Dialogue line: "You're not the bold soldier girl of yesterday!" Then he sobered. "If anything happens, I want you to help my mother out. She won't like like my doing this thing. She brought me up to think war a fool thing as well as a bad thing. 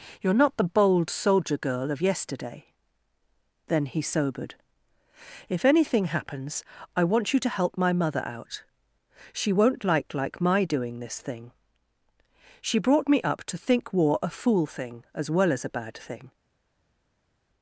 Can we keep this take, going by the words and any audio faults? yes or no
yes